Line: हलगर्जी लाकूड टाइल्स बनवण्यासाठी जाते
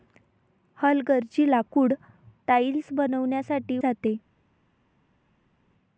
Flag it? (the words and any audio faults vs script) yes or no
no